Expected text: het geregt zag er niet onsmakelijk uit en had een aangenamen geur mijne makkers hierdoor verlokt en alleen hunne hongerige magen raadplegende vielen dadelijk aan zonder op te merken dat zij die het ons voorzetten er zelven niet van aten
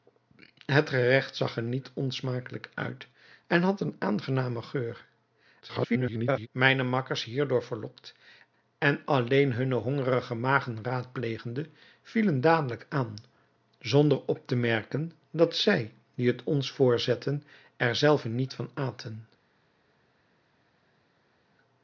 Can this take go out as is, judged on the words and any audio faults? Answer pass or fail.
fail